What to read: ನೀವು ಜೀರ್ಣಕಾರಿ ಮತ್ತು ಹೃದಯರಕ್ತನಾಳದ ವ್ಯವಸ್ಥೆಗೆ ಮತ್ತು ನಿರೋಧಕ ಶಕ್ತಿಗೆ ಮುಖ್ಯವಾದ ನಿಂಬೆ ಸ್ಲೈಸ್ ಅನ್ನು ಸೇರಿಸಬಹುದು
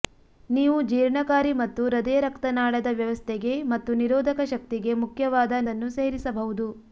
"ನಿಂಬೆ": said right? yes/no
no